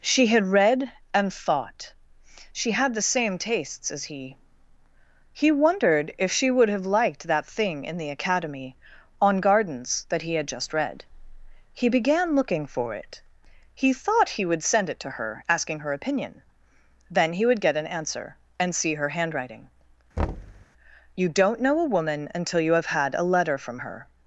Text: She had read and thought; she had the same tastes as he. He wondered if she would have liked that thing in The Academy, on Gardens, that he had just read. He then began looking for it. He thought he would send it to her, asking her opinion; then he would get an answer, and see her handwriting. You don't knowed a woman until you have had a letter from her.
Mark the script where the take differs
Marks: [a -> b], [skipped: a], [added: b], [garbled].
She had read and thought; she had the same tastes as he. He wondered if she would have liked that thing in The Academy, on Gardens, that he had just read. He [skipped: then] began looking for it. He thought he would send it to her, asking her opinion; then he would get an answer, and see her handwriting. You don't [knowed -> know] a woman until you have had a letter from her.